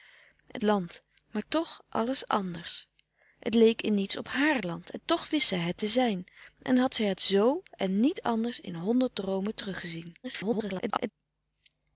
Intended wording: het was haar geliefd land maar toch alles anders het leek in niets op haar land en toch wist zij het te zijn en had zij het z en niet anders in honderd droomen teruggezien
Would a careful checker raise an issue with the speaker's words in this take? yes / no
yes